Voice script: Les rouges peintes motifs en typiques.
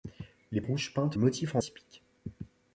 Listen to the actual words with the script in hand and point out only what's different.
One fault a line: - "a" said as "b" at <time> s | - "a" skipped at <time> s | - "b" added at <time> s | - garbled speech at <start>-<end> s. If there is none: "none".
none